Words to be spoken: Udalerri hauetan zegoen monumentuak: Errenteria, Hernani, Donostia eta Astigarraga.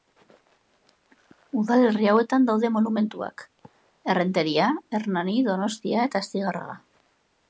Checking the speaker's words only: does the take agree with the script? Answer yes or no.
no